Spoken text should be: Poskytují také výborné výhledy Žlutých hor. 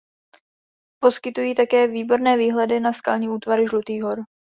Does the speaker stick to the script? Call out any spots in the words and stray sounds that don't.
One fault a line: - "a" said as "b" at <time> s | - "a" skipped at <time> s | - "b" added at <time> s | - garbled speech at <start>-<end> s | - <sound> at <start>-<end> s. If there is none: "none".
- "na skalní útvary" added at 2.8 s